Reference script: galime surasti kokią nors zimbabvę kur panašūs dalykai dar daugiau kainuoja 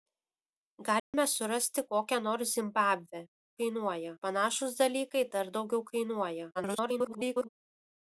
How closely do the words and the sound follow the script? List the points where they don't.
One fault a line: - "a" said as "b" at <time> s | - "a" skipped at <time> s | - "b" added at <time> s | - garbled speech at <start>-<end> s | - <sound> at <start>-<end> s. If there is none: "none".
- dropout at 1.0-1.1 s
- "kur" said as "kainuoja" at 3.6 s
- garbled speech at 6.5-7.5 s